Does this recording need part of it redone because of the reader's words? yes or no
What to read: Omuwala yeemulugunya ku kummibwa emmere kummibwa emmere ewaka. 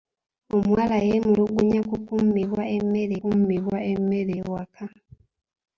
no